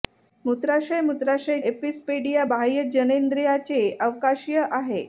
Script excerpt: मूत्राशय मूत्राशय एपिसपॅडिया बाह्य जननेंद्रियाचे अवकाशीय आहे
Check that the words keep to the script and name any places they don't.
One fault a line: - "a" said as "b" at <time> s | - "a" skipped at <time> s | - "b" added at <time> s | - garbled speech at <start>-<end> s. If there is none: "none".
none